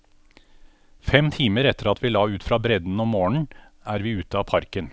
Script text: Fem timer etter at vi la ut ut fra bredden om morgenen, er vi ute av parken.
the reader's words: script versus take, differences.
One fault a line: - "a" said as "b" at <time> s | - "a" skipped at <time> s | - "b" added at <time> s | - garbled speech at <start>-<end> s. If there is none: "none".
- "ut" skipped at 2.4 s